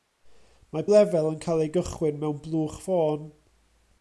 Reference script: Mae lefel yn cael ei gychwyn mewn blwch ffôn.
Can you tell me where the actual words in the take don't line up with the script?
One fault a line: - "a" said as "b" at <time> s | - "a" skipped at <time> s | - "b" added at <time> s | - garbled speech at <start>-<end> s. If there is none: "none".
none